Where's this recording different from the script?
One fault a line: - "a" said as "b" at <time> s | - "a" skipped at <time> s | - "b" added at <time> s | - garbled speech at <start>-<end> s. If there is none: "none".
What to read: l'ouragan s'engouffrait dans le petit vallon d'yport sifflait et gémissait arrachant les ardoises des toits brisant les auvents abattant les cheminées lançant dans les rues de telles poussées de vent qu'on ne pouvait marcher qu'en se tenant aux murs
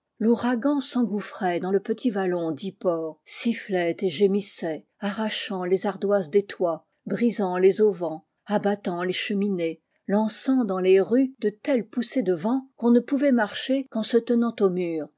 none